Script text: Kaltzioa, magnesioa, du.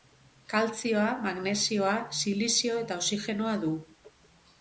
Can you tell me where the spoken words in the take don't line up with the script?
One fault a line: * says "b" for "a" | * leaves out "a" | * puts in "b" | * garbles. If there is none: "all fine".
* puts in "silizio eta oxigenoa"